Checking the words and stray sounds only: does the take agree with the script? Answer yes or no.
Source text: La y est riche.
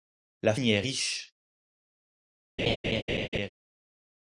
no